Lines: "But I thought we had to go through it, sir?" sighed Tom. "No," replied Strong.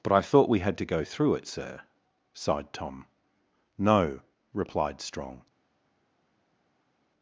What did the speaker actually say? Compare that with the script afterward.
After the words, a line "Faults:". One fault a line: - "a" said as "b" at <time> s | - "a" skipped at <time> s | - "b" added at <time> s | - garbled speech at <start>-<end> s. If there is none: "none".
"But I thought we had to go through it, sir?" sighed Tom. "No," replied Strong.
Faults:
none